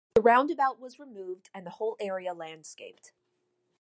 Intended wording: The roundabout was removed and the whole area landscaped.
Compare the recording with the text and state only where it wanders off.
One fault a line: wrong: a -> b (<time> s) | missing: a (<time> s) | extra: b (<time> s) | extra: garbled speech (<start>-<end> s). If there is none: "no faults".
no faults